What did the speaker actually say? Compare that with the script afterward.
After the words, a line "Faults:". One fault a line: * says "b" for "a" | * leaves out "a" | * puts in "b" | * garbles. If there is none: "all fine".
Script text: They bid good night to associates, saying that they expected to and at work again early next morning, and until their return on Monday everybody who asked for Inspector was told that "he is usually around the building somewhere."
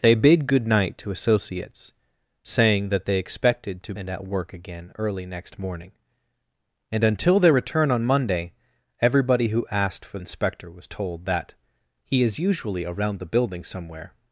They bid good night to associates, saying that they expected to and at work again early next morning, and until their return on Monday everybody who asked for Inspector was told that "he is usually around the building somewhere."
Faults:
all fine